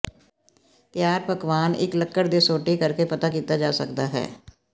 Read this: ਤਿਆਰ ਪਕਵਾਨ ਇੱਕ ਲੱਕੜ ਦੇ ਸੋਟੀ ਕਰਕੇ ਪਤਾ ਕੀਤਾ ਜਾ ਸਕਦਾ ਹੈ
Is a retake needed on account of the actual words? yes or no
no